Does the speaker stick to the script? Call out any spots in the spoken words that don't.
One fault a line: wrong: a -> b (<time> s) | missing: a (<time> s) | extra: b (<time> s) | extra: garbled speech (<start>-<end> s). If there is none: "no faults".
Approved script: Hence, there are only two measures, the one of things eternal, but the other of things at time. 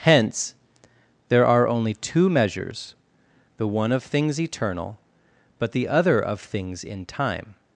wrong: at -> in (6.8 s)